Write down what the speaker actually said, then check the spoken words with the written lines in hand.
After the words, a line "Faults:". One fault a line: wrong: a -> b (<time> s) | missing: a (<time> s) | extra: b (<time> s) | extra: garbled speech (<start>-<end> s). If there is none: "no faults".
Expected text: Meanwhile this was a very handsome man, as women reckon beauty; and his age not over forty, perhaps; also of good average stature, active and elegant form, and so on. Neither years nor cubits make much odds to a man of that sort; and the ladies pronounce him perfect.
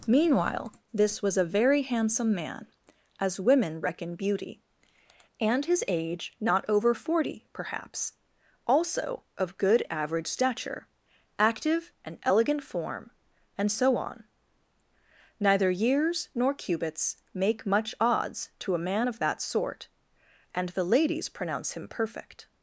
Meanwhile this was a very handsome man, as women reckon beauty; and his age not over forty, perhaps; also of good average stature, active and elegant form, and so on. Neither years nor cubits make much odds to a man of that sort; and the ladies pronounce him perfect.
Faults:
no faults